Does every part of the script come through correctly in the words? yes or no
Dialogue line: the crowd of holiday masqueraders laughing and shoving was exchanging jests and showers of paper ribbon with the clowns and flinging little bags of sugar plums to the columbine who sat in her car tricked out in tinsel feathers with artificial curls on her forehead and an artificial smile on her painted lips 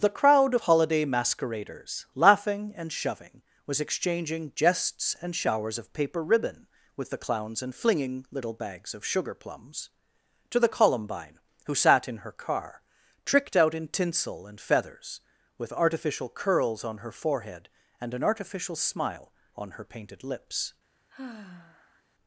no